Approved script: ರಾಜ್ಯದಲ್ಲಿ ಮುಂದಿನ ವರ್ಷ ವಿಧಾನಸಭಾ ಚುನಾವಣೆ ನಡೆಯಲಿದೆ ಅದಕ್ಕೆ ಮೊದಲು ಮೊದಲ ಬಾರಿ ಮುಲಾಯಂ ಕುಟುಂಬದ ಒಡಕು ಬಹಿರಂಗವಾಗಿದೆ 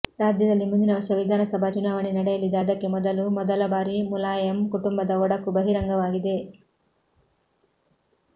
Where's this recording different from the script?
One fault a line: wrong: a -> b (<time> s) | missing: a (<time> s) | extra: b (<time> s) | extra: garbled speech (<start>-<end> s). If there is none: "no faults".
no faults